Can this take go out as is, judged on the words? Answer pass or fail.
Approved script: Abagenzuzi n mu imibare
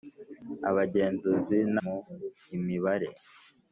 pass